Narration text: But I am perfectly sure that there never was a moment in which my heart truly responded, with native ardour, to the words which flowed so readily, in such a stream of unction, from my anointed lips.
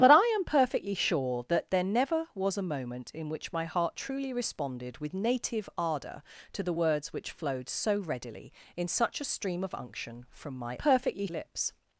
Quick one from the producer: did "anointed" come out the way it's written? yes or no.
no